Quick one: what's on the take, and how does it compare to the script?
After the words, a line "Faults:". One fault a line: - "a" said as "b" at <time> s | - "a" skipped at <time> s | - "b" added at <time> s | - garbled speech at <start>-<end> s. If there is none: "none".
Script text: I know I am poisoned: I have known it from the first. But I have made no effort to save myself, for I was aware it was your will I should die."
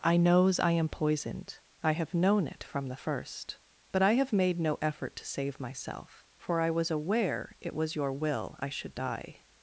I knows I am poisoned: I have known it from the first. But I have made no effort to save myself, for I was aware it was your will I should die."
Faults:
- "know" said as "knows" at 0.2 s